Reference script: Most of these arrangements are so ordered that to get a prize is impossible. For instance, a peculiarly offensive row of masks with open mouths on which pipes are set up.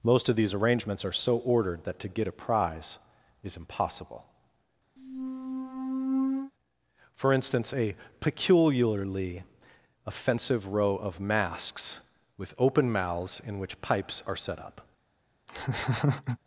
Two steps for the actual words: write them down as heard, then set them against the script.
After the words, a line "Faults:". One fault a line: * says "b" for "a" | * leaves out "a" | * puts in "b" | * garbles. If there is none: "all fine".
Most of these arrangements are so ordered that to get a prize is impossible. For instance, a peculiarly offensive row of masks with open mouths in which pipes are set up.
Faults:
* says "in" for "on"